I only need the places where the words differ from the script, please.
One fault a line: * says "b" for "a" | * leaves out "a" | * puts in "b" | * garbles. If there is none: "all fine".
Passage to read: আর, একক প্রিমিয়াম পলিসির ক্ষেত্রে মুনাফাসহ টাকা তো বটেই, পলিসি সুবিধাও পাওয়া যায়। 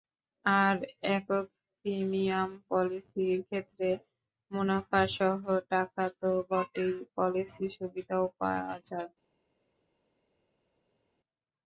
all fine